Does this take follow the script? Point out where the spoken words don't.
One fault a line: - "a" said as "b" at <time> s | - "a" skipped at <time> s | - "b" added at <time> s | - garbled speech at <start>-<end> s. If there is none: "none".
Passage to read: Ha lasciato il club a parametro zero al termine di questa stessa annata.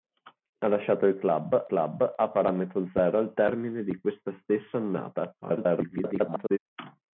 - "club" added at 1.7 s
- garbled speech at 5.4-6.6 s